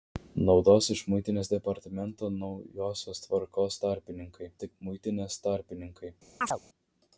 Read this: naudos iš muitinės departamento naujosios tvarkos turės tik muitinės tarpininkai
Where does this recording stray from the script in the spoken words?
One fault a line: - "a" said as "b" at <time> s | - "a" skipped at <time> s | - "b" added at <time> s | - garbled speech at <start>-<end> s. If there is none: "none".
- "turės" said as "tarpininkai" at 3.9 s